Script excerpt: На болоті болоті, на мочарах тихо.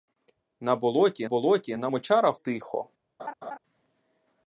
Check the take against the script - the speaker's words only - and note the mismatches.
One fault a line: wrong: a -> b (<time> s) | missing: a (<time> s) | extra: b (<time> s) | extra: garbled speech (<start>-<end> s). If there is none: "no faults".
no faults